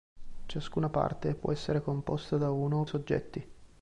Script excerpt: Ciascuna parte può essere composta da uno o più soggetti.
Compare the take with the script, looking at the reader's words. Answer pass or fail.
fail